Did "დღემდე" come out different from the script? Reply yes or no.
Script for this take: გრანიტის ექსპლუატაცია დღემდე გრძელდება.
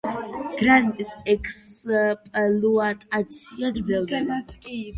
yes